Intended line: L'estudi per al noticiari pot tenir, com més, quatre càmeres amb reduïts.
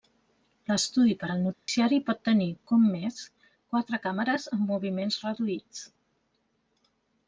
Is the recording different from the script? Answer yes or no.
yes